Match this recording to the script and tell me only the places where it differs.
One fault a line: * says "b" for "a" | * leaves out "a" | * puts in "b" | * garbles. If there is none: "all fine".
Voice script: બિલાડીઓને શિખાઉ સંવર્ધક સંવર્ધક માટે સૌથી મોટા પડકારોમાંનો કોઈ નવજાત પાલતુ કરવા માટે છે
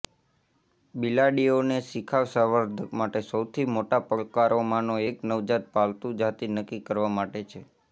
* leaves out "સંવર્ધક"
* says "એક" for "કોઈ"
* puts in "જાતિ નક્કી"